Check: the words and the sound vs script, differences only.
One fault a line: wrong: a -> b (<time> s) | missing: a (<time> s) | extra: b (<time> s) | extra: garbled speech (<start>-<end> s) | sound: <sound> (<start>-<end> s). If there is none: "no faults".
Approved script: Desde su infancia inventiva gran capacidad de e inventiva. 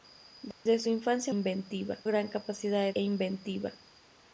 sound: dropout (0.5-0.7 s)